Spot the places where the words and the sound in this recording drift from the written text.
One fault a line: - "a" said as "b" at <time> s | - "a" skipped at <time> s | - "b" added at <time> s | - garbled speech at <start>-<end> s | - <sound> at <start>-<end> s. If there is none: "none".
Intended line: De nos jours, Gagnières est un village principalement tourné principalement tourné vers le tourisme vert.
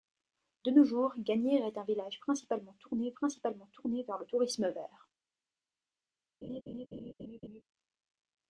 - laugh at 6.4-7.6 s